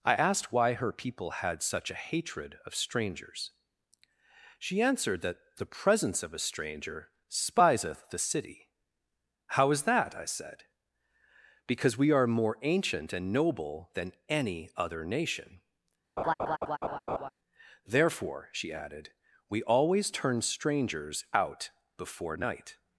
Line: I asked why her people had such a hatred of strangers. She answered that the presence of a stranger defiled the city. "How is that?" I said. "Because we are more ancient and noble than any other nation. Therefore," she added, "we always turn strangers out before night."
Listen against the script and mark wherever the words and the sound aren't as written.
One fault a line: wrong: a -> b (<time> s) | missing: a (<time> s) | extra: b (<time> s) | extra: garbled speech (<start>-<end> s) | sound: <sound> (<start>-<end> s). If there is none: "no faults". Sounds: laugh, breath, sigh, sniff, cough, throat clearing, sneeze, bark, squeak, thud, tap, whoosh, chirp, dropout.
wrong: defiled -> spiseth (7.3 s)
sound: laugh (16.2-17.3 s)